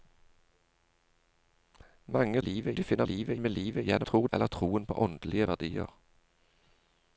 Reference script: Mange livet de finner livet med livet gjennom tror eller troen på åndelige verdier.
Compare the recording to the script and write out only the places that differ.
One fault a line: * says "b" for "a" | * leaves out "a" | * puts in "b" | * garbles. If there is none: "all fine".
all fine